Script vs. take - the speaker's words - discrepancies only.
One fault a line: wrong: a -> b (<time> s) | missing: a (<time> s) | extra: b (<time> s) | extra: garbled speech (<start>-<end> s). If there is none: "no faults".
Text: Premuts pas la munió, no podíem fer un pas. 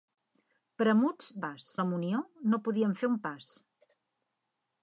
no faults